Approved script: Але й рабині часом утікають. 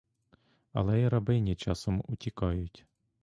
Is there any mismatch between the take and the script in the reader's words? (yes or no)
no